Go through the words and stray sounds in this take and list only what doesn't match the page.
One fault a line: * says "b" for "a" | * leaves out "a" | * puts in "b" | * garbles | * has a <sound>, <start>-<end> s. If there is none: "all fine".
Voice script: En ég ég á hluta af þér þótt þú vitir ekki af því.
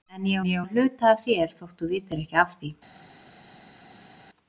all fine